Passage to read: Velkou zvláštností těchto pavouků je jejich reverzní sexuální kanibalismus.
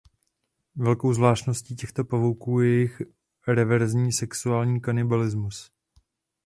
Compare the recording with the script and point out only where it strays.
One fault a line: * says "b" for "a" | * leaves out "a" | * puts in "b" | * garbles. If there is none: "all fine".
all fine